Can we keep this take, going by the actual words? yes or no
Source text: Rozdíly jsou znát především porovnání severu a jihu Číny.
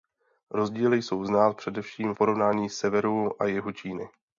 yes